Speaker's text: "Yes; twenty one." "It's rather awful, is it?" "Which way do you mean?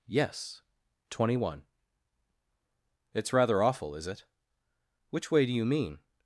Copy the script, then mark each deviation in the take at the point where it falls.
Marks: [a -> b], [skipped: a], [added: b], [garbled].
"Yes; twenty one." "It's rather awful, is it?" "Which way do you mean?